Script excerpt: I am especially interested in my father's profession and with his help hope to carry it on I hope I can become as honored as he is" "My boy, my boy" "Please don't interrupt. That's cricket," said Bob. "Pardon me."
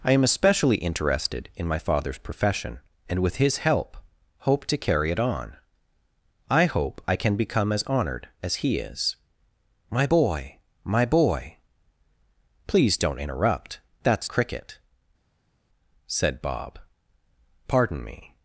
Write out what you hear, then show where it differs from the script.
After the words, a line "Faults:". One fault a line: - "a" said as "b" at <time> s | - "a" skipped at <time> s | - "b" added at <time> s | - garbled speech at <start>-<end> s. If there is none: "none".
I am especially interested in my father's profession and with his help hope to carry it on I hope I can become as honored as he is" "My boy, my boy" "Please don't interrupt. That's cricket," said Bob. "Pardon me."
Faults:
none